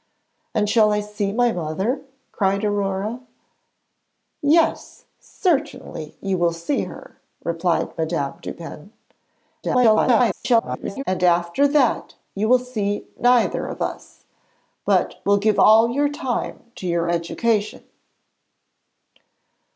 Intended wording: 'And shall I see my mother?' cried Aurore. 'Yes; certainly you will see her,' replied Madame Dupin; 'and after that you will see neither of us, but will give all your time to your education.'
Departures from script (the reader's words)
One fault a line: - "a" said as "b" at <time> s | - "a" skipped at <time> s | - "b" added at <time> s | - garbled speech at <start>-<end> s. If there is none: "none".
- garbled speech at 9.6-11.0 s